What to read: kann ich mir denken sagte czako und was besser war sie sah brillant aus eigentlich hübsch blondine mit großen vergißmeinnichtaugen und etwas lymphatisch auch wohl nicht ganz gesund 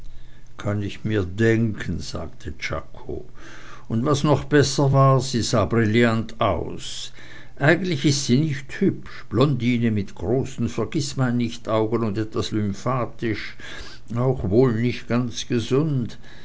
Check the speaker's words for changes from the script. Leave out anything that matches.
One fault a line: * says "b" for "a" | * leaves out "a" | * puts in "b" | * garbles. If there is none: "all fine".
* puts in "noch"
* puts in "ist sie nicht"